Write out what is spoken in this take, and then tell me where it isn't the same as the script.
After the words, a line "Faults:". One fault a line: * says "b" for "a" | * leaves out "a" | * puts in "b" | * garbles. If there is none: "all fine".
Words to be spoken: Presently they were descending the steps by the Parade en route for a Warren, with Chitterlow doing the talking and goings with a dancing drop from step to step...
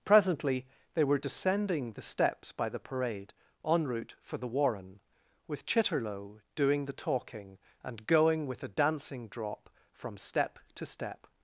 Presently they were descending the steps by the Parade en route for the Warren, with Chitterlow doing the talking and going with a dancing drop from step to step...
Faults:
* says "the" for "a"
* says "going" for "goings"